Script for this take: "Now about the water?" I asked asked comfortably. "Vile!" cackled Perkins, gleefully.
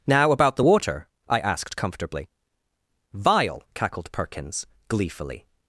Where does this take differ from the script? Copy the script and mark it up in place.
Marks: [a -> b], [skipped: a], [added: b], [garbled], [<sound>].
"Now about the water?" I asked [skipped: asked] comfortably. "Vile!" cackled Perkins, gleefully.